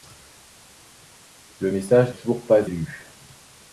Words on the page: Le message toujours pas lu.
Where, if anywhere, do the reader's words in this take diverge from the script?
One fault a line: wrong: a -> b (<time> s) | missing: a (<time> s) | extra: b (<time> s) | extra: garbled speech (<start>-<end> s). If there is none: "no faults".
no faults